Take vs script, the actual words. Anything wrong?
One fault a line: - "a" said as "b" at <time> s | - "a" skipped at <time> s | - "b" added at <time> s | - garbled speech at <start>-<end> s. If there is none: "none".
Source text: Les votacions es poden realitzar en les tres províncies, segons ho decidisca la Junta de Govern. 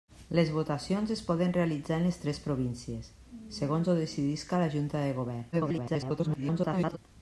- garbled speech at 5.5-7.0 s